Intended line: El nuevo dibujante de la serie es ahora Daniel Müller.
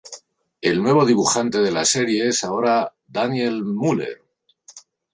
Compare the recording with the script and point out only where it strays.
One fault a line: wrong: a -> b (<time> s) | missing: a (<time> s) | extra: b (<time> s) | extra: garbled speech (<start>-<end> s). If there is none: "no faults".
no faults